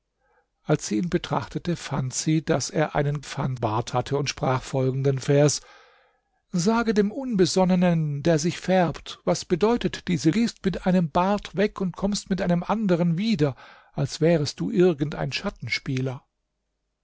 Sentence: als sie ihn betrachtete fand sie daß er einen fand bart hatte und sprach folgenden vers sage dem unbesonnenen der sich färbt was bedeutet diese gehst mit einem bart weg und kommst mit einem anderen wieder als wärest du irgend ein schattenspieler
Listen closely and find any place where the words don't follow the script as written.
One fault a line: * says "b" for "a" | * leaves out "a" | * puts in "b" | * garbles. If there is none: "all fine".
all fine